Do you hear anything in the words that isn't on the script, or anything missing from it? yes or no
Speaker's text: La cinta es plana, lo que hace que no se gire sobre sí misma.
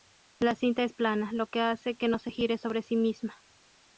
no